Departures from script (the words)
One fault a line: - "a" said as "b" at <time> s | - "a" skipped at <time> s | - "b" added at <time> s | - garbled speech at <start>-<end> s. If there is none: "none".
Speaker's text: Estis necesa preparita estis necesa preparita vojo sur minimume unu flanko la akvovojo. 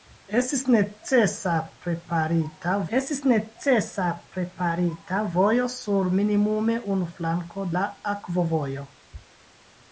none